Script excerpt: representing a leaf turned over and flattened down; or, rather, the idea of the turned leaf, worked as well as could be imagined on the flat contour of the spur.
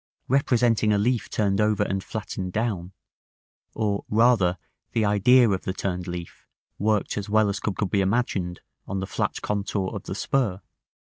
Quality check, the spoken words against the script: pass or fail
fail